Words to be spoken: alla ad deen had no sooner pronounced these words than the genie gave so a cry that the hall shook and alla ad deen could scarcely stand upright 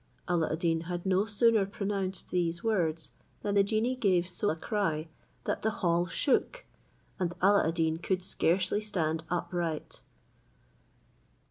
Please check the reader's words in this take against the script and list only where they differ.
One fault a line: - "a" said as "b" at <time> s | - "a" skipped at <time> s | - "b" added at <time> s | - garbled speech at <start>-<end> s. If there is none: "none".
none